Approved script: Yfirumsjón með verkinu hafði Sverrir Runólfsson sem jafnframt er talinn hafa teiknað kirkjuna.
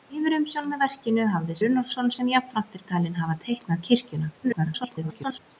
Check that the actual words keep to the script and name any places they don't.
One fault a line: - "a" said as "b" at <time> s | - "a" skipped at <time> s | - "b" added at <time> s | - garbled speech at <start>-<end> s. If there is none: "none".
- "Sverrir" skipped at 1.6 s
- garbled speech at 4.4-5.4 s